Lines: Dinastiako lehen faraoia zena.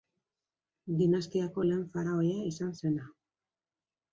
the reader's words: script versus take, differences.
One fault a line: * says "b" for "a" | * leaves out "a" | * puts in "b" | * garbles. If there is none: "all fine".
* puts in "izan"